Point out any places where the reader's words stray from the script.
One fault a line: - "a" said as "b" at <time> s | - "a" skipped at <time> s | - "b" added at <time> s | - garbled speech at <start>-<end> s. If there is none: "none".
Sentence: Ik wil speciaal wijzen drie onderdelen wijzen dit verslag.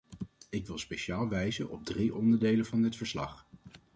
- "op" added at 1.7 s
- "wijzen" said as "van" at 2.6 s